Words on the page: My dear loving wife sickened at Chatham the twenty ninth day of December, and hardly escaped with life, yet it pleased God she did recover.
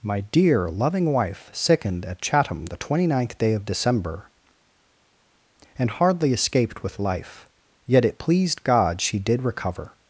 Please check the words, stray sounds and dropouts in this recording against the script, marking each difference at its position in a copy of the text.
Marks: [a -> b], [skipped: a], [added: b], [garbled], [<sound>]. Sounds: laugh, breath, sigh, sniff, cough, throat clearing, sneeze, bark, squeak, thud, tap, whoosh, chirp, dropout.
My dear loving wife sickened at Chatham the twenty ninth day of December, and hardly escaped with life, yet it pleased God she did recover.